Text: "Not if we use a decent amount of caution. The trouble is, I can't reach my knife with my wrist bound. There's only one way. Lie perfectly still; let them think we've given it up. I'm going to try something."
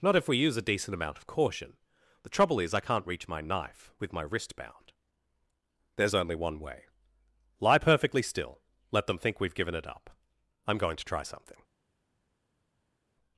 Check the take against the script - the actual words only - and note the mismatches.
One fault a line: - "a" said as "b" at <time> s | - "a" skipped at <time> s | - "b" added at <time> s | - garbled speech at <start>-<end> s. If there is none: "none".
none